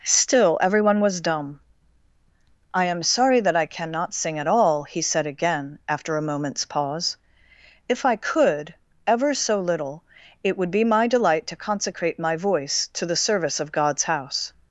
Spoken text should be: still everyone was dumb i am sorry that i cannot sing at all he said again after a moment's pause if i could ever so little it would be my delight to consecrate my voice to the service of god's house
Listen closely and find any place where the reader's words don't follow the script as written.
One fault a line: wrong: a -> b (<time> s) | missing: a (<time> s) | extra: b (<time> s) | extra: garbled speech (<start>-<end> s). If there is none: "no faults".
no faults